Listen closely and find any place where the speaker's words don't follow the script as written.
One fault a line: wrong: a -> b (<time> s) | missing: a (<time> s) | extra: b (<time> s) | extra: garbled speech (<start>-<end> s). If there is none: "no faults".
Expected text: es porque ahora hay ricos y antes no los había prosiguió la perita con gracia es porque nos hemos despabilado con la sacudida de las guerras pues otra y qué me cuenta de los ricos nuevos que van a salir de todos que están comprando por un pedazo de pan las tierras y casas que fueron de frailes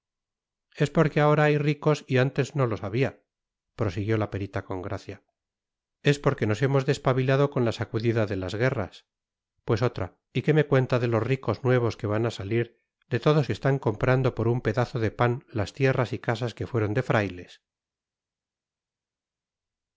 no faults